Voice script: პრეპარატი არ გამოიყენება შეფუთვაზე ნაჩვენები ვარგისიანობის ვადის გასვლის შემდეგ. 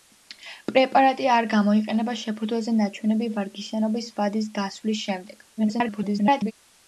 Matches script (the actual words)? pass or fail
fail